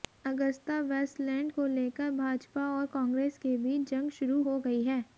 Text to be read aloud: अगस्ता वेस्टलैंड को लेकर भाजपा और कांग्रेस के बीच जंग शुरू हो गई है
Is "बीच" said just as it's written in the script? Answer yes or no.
yes